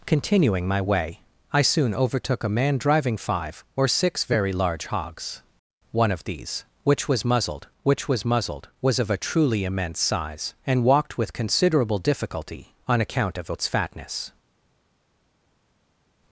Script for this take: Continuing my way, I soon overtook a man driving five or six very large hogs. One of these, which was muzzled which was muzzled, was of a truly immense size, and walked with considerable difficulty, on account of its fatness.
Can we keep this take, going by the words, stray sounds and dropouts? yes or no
yes